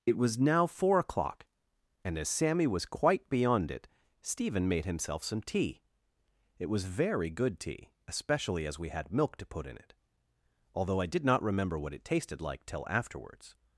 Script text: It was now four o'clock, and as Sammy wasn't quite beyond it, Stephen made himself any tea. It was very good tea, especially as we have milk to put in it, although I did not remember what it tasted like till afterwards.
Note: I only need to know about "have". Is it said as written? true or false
false